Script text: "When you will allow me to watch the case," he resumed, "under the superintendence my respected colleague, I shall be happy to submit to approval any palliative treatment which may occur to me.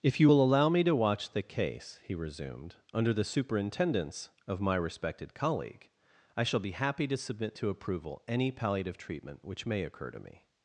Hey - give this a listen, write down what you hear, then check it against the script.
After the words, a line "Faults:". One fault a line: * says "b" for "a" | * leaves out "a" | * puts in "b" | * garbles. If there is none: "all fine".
"If you will allow me to watch the case," he resumed, "under the superintendence of my respected colleague, I shall be happy to submit to approval any palliative treatment which may occur to me.
Faults:
* says "If" for "When"
* puts in "of"